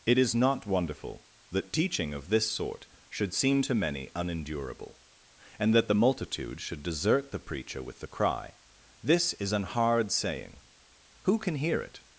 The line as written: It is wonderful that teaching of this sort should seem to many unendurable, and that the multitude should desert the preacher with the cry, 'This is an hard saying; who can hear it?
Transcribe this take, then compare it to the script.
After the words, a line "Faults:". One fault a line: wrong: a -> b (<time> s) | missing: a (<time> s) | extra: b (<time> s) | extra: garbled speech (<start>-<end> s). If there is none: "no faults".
It is not wonderful that teaching of this sort should seem to many unendurable, and that the multitude should desert the preacher with the cry, 'This is an hard saying; who can hear it?
Faults:
extra: not (0.3 s)